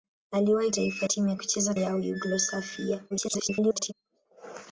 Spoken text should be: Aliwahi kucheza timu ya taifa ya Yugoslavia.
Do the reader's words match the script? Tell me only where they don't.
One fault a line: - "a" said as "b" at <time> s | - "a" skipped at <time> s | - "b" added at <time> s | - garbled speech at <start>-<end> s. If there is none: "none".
- "kucheza" said as "taifa" at 0.7 s
- "taifa" said as "kucheza" at 1.4 s
- garbled speech at 3.1-3.9 s